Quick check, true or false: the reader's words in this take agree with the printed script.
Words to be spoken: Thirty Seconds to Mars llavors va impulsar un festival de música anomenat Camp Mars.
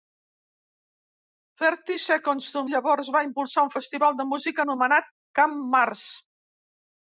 false